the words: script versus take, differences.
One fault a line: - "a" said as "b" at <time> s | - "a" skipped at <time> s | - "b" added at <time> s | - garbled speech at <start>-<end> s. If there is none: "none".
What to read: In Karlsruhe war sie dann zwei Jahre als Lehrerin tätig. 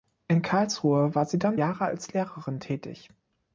- "zwei" skipped at 1.6 s